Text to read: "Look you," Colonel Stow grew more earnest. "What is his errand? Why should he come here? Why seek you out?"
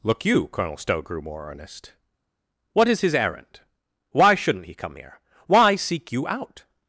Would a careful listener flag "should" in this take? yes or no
yes